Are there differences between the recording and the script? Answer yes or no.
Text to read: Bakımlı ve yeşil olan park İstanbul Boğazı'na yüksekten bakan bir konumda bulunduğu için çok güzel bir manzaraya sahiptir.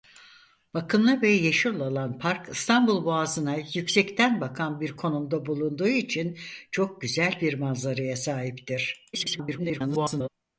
yes